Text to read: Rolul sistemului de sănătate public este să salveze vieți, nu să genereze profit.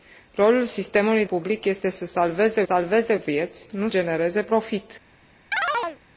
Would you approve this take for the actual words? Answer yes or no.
no